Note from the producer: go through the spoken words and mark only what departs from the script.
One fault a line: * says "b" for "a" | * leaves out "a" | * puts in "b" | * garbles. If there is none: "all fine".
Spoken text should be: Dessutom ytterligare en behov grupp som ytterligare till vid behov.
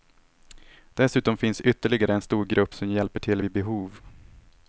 * puts in "finns"
* says "stor" for "behov"
* says "hjälper" for "ytterligare"